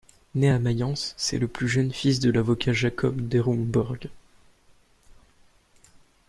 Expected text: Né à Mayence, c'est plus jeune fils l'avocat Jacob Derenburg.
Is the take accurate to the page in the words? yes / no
no